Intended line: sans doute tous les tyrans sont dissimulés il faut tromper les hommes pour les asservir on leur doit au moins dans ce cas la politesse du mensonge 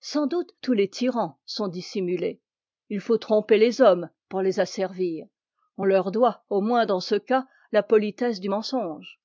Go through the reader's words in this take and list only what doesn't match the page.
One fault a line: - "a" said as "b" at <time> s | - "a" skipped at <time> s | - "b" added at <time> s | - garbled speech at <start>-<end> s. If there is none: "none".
none